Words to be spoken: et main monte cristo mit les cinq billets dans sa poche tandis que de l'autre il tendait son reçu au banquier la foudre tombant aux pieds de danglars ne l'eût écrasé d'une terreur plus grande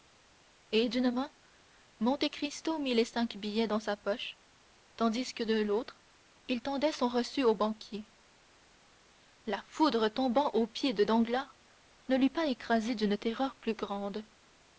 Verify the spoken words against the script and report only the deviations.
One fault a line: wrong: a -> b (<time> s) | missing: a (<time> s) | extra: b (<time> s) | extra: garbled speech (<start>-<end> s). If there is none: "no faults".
extra: d'une (0.9 s)
extra: pas (12.3 s)